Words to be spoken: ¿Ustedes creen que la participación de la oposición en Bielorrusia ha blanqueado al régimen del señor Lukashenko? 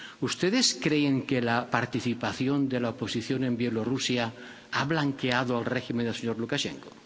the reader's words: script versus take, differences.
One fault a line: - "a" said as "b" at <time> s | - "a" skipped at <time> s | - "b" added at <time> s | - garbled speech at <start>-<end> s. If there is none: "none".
none